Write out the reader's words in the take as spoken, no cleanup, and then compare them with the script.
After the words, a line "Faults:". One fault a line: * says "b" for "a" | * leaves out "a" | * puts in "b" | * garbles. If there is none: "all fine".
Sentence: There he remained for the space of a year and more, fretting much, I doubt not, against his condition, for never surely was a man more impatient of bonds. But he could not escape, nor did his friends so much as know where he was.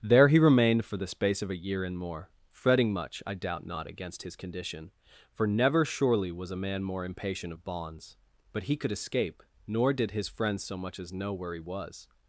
There he remained for the space of a year and more, fretting much, I doubt not, against his condition, for never surely was a man more impatient of bonds. But he could escape, nor did his friends so much as know where he was.
Faults:
* leaves out "not"